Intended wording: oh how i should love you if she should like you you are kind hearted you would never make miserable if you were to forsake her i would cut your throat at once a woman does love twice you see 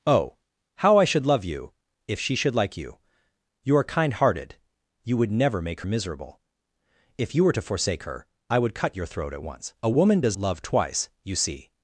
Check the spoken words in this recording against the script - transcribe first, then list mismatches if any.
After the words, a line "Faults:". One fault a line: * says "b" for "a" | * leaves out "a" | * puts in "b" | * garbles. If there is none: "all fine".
oh how i should love you if she should like you you are kind hearted you would never make miserable if you were to forsake her i would cut your throat at once a woman does love twice you see
Faults:
all fine